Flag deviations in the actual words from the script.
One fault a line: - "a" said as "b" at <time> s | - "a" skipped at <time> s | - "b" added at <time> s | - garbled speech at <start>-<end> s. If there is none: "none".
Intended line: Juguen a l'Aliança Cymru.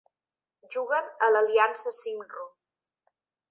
none